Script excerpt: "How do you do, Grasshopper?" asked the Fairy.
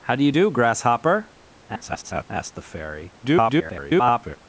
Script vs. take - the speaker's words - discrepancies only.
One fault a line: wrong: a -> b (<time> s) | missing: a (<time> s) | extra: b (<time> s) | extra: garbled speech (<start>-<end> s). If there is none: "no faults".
extra: garbled speech (1.7-2.2 s)
extra: garbled speech (3.2-4.4 s)